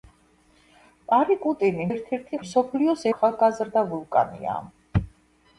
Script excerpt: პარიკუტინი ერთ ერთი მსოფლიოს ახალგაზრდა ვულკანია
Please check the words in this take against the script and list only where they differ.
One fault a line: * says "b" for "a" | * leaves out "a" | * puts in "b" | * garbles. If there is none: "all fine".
all fine